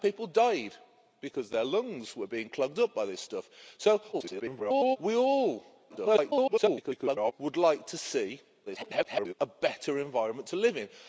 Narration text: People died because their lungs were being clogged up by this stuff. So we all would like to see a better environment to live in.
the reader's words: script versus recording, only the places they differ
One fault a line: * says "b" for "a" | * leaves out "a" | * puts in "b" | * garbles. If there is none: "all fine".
* garbles
* garbles
* garbles